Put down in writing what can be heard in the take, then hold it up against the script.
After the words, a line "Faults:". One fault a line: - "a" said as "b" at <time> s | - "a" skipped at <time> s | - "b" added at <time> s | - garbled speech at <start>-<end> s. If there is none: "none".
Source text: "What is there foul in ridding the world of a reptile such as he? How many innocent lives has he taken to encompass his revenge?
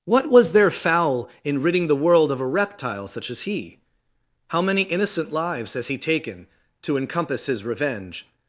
"What was there foul in ridding the world of a reptile such as he? How many innocent lives has he taken to encompass his revenge?
Faults:
- "is" said as "was" at 0.3 s